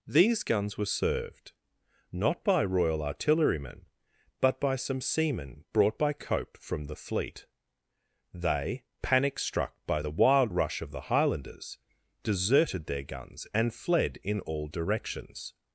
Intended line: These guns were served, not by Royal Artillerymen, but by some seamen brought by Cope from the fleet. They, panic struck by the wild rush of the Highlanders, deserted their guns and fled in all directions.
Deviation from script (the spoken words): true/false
false